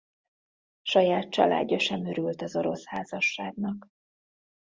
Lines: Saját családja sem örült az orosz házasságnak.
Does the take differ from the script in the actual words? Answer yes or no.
no